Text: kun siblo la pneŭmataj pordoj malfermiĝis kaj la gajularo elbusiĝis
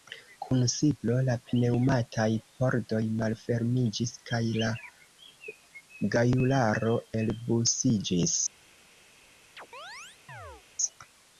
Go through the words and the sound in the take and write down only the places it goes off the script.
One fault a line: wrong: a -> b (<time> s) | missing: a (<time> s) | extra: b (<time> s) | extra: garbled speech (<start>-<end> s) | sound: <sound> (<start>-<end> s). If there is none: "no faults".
sound: chirp (9.6-10.6 s)